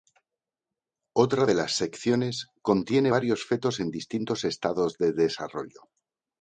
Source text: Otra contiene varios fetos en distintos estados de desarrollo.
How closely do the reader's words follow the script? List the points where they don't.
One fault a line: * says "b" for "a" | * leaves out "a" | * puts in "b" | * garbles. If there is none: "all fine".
* puts in "de las secciones"